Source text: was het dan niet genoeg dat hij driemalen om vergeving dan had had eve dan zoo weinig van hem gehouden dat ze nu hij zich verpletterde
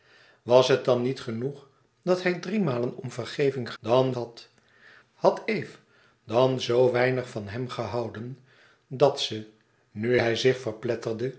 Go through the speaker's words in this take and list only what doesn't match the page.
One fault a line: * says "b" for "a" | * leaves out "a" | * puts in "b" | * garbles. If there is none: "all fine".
all fine